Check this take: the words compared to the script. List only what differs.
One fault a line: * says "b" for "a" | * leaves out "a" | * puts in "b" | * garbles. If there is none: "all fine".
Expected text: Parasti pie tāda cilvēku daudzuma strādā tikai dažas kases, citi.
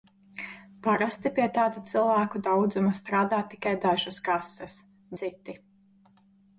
all fine